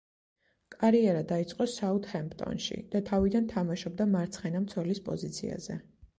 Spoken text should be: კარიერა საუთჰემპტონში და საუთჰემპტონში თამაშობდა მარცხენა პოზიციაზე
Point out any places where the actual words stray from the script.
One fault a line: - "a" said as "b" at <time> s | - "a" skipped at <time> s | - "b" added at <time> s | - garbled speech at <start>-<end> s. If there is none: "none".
- "დაიწყო" added at 1.3 s
- "საუთჰემპტონში" said as "თავიდან" at 3.1 s
- "მცველის" added at 4.7 s